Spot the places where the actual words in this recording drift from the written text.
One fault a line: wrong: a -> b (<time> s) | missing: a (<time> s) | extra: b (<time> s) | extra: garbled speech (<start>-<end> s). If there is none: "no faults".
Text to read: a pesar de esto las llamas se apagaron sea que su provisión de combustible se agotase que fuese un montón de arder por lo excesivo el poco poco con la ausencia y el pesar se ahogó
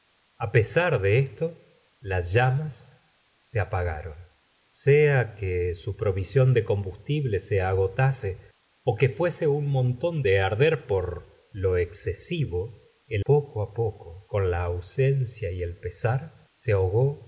no faults